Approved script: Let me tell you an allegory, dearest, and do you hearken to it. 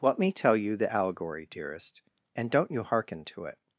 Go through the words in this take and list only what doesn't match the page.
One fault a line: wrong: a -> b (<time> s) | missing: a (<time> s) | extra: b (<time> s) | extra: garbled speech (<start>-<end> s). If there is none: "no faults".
wrong: an -> the (0.8 s)
wrong: do -> don't (2.5 s)